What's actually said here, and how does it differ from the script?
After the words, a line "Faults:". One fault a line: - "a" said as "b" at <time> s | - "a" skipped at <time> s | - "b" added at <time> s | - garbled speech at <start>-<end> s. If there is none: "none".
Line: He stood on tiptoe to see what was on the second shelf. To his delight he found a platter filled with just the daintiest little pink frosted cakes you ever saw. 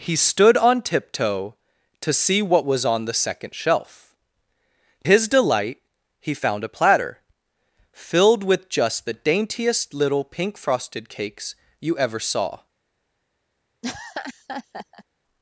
He stood on tiptoe to see what was on the second shelf. His delight he found a platter filled with just the daintiest little pink frosted cakes you ever saw.
Faults:
- "To" skipped at 4.2 s